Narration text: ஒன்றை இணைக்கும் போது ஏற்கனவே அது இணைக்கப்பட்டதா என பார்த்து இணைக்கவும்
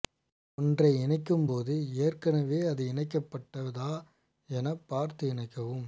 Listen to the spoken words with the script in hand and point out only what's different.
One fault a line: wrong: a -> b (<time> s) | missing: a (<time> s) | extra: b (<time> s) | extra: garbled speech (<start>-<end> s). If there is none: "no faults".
no faults